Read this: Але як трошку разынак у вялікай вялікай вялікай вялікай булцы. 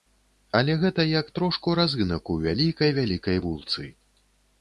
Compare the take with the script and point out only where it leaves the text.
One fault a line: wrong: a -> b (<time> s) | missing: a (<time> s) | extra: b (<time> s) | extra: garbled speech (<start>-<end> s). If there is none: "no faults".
extra: гэта (0.8 s)
missing: вялікай вялікай (3.4 s)